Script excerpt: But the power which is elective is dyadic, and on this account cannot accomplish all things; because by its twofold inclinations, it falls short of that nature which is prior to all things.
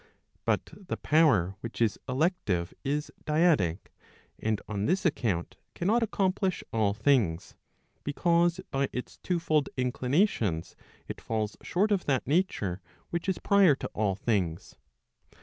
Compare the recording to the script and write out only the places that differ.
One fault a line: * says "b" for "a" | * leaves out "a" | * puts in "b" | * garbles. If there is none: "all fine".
all fine